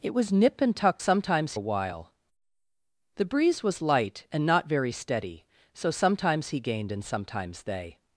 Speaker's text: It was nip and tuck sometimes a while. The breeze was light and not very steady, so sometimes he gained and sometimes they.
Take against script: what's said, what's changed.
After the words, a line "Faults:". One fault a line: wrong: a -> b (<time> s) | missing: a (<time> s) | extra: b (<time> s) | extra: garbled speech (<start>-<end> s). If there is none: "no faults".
It was nip and tuck sometimes a while. The breeze was light and not very steady, so sometimes he gained and sometimes they.
Faults:
no faults